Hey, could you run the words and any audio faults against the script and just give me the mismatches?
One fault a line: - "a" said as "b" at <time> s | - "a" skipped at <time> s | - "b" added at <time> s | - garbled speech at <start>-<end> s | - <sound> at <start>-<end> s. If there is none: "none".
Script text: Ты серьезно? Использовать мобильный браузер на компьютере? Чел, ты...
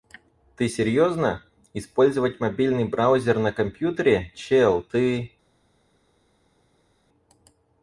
none